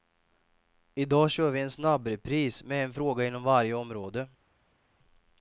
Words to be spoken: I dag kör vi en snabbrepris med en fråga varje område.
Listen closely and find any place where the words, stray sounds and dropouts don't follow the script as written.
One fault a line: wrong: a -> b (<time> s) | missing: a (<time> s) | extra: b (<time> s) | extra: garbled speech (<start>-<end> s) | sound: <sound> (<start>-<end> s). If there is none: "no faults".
extra: inom (3.3 s)